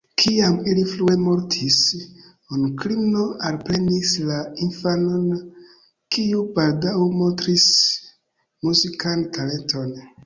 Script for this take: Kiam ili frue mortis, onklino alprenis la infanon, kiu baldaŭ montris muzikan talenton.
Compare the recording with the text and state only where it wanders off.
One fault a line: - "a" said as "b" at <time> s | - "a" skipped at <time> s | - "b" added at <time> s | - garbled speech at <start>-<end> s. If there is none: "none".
none